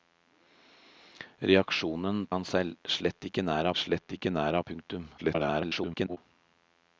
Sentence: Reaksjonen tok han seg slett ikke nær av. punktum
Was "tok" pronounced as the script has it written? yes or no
no